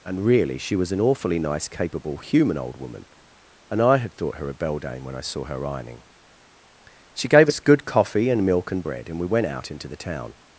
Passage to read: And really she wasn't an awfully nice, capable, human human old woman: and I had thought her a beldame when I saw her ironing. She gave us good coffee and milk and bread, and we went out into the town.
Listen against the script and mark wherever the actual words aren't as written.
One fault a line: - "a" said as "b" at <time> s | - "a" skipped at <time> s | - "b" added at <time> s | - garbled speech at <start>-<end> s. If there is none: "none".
- "wasn't" said as "was" at 0.8 s
- "human" skipped at 2.6 s